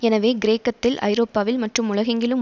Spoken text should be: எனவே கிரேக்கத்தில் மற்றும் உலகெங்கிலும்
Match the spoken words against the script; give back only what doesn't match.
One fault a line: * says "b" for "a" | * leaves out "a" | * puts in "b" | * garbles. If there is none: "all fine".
* puts in "ஐரோப்பாவில்"